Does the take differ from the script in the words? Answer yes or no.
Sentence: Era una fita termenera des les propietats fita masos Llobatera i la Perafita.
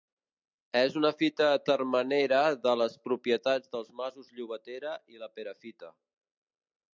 yes